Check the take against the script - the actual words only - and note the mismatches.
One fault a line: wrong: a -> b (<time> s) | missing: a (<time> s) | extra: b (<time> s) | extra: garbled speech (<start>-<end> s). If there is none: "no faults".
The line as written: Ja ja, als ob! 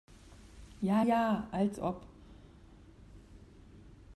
no faults